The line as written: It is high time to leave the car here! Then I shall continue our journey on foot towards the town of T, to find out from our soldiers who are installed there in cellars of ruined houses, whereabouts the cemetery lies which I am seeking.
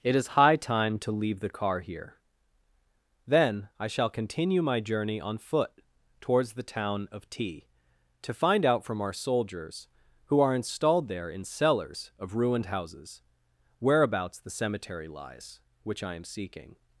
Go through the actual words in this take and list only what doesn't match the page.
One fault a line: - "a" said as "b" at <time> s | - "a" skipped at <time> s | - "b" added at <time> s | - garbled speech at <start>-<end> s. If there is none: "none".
- "our" said as "my" at 4.6 s